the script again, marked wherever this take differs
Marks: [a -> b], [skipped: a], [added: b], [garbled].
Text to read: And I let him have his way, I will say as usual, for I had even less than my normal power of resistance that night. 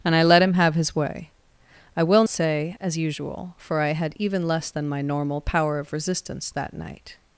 And I let him have his way, I will say as usual, for I had even less than my normal power of resistance that night.